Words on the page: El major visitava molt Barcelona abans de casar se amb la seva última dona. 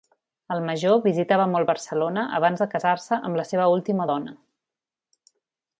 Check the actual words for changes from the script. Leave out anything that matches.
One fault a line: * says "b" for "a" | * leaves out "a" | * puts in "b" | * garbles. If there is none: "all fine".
all fine